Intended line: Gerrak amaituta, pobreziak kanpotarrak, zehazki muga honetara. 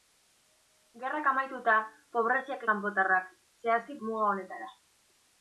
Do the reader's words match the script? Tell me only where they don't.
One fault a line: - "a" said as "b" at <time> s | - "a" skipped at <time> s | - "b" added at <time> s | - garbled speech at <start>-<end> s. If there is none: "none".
none